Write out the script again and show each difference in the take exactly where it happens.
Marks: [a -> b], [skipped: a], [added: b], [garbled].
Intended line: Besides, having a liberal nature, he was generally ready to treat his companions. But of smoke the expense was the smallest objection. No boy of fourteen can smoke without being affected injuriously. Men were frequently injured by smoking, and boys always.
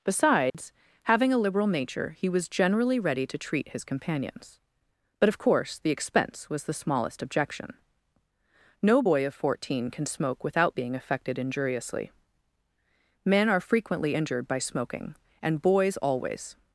Besides, having a liberal nature, he was generally ready to treat his companions. But of [smoke -> course] the expense was the smallest objection. No boy of fourteen can smoke without being affected injuriously. Men [were -> are] frequently injured by smoking, and boys always.